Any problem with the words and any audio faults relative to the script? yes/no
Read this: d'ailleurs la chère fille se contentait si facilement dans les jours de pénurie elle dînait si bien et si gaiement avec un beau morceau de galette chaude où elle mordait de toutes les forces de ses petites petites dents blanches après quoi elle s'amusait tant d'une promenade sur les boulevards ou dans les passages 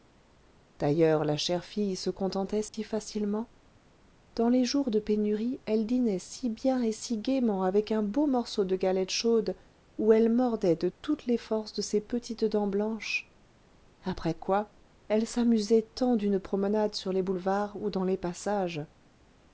yes